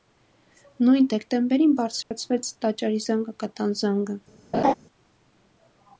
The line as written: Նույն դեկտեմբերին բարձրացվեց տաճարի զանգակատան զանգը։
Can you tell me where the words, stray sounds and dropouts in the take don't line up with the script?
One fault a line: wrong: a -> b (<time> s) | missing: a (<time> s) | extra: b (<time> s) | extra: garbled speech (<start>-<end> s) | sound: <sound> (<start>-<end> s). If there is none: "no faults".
sound: dropout (2.0-2.1 s)
sound: laugh (4.5-4.7 s)